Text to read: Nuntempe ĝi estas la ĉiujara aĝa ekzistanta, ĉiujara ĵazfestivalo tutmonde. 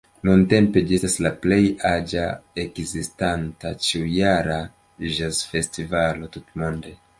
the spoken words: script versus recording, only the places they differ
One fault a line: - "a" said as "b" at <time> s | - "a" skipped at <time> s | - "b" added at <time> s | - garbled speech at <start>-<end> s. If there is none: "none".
- "ĉiujara" said as "plej" at 1.5 s